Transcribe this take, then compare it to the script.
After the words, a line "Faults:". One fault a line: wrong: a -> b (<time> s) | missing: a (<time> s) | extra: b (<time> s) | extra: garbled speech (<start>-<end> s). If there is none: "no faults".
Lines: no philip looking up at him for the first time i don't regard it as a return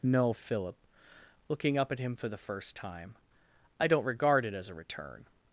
no philip looking up at him for the first time i don't regard it as a return
Faults:
no faults